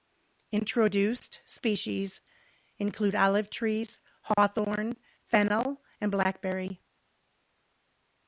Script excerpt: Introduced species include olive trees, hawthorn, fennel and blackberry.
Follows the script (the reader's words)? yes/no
yes